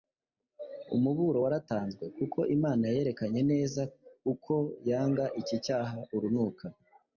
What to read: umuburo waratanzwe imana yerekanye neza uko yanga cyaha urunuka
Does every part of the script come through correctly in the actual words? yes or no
no